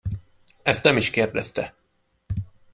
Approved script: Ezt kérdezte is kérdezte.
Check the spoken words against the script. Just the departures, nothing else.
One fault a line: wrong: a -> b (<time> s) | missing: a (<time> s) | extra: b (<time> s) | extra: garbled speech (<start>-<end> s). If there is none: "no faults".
wrong: kérdezte -> nem (0.8 s)